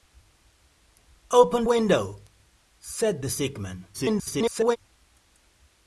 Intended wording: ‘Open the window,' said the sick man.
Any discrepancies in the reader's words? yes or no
yes